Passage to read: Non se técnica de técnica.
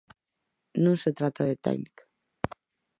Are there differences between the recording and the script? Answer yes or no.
yes